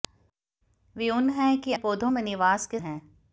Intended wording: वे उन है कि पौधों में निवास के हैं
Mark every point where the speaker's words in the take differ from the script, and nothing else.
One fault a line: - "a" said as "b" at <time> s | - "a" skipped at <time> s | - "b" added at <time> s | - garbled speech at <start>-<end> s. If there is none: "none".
none